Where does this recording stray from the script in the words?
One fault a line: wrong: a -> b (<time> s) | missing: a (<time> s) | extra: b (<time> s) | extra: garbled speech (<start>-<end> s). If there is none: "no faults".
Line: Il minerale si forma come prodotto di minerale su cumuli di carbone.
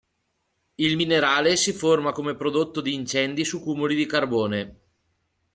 wrong: minerale -> incendi (2.9 s)